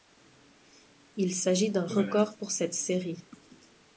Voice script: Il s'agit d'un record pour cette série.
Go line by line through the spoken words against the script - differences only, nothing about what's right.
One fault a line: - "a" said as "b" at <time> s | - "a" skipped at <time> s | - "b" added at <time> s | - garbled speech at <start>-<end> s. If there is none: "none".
none